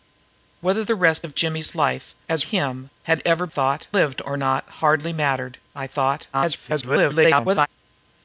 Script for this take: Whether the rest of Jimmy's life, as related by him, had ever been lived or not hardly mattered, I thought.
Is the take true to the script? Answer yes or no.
no